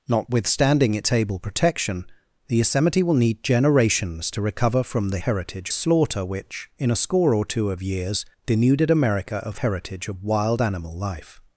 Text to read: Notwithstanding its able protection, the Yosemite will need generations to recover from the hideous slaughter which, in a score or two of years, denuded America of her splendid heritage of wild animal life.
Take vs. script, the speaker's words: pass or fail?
fail